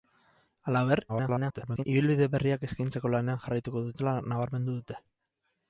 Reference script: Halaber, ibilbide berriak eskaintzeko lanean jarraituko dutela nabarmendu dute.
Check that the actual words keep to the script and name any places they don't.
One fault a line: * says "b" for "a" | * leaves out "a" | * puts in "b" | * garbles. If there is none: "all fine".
* garbles